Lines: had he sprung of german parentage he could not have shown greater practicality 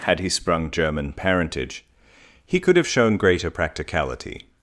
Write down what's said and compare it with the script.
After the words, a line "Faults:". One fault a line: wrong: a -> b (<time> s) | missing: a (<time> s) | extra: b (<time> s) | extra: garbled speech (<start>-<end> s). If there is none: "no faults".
had he sprung german parentage he could have shown greater practicality
Faults:
missing: of (0.7 s)
missing: not (2.8 s)